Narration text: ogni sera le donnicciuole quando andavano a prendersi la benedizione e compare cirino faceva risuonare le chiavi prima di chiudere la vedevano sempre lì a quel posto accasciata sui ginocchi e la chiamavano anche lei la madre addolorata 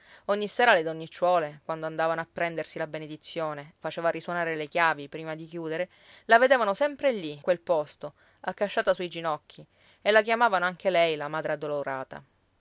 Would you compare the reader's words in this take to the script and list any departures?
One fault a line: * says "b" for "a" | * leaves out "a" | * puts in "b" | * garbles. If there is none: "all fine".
* leaves out "e compare cirino"
* leaves out "a"